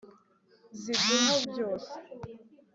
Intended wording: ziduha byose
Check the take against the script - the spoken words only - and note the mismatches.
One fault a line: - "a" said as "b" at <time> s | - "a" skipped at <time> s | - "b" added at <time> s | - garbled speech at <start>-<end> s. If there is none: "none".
none